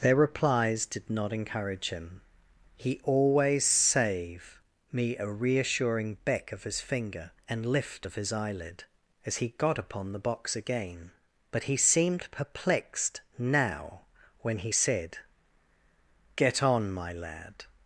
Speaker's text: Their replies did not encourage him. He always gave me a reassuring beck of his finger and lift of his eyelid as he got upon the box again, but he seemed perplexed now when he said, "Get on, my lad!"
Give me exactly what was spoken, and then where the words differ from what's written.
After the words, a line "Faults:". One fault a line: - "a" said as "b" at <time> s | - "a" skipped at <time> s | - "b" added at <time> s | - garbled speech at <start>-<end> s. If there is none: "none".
Their replies did not encourage him. He always save me a reassuring beck of his finger and lift of his eyelid as he got upon the box again, but he seemed perplexed now when he said, "Get on, my lad!"
Faults:
- "gave" said as "save" at 3.6 s